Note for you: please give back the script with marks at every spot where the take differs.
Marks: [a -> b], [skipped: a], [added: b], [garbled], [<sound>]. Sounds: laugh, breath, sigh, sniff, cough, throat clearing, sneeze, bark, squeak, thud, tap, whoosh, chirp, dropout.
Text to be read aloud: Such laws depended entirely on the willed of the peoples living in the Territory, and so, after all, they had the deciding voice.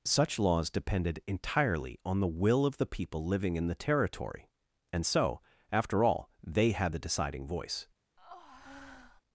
Such laws depended entirely on the [willed -> will] of the [peoples -> people] living in the Territory, and so, after all, they had the deciding voice. [breath]